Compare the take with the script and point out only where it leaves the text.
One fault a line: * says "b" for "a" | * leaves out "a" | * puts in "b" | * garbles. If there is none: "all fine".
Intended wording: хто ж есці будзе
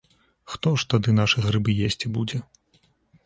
* puts in "тады нашы грыбы"